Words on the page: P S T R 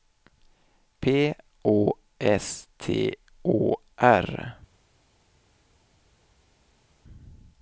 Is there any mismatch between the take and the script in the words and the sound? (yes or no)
yes